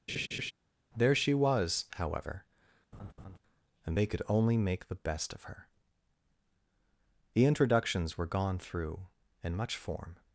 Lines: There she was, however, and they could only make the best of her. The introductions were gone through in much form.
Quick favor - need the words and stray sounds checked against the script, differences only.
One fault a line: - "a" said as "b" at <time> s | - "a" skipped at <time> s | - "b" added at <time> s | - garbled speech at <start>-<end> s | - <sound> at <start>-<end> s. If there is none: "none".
- laugh at 0.1-0.5 s
- laugh at 2.9-3.4 s